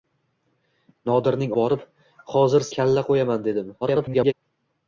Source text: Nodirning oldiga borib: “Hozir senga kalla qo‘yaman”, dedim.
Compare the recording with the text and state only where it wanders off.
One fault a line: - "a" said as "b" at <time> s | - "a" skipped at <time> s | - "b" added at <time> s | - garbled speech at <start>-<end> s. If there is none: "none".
- "oldiga" skipped at 1.5 s
- "senga" skipped at 2.7 s
- garbled speech at 3.8-4.3 s